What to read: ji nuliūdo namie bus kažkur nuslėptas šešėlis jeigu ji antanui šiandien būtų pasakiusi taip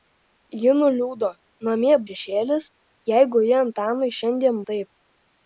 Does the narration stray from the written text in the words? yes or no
yes